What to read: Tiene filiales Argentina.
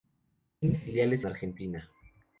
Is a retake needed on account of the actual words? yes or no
no